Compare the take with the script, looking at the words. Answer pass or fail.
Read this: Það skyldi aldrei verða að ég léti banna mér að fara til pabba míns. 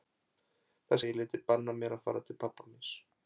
fail